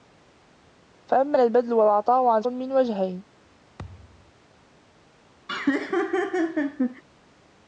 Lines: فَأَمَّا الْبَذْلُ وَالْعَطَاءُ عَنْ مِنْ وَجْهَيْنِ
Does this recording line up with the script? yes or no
yes